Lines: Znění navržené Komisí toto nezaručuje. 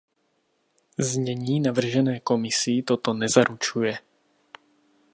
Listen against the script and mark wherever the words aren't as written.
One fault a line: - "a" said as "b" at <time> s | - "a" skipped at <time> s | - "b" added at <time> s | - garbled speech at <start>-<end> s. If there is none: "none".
none